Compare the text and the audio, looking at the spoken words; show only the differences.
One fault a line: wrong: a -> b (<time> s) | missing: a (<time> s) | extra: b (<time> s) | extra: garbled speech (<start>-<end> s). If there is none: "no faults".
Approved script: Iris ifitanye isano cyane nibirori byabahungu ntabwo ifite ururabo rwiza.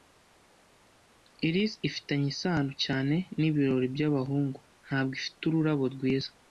no faults